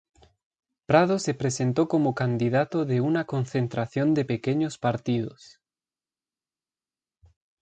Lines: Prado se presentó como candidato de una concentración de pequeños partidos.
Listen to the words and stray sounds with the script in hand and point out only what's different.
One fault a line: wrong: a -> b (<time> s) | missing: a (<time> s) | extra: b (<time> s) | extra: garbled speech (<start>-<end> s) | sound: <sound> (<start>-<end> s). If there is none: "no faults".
no faults